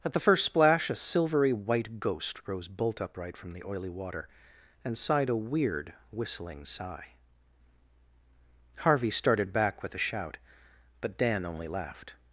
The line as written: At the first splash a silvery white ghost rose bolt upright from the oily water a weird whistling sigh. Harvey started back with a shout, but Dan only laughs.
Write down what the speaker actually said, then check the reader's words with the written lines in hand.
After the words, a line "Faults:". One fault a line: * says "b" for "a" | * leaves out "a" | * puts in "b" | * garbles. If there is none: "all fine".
At the first splash a silvery white ghost rose bolt upright from the oily water and sighed a weird whistling sigh. Harvey started back with a shout, but Dan only laughed.
Faults:
* puts in "and sighed"
* says "laughed" for "laughs"